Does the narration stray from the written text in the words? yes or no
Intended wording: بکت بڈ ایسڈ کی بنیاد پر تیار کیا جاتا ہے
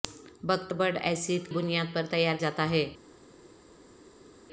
yes